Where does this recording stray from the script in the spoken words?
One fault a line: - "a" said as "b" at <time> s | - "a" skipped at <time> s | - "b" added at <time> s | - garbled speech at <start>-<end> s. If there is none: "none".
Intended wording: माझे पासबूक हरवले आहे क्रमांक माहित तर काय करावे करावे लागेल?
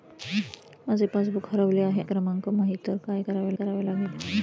none